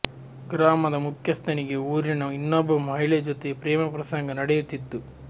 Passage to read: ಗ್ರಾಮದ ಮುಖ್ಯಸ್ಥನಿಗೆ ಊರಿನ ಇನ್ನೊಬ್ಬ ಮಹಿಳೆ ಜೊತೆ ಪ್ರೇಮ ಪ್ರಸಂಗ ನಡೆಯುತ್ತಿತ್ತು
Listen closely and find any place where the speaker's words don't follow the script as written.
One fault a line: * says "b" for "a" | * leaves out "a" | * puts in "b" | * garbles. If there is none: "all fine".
all fine